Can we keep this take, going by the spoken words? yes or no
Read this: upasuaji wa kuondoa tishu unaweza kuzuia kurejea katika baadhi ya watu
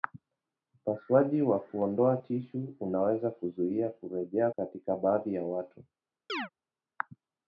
yes